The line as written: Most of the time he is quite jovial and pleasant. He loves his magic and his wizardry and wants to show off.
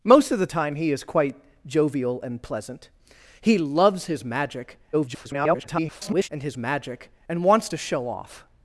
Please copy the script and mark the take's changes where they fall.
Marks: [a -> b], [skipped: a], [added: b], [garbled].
Most of the time he is quite jovial and pleasant. He loves his magic [garbled] and his [wizardry -> magic] and wants to show off.